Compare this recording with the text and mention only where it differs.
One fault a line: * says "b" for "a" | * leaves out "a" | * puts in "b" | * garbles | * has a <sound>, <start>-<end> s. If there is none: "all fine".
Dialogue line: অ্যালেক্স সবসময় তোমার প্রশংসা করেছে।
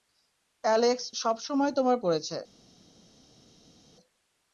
* leaves out "প্রশংসা"